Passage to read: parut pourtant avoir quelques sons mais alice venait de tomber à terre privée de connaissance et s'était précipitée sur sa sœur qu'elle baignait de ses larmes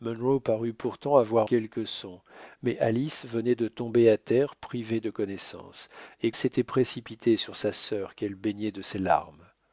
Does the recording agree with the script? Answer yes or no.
yes